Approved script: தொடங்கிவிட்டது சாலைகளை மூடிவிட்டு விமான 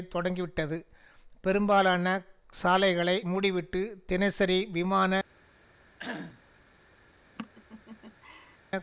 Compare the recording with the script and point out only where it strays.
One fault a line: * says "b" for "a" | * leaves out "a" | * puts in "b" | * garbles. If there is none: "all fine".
* puts in "பெரும்பாலான"
* puts in "தினசரி"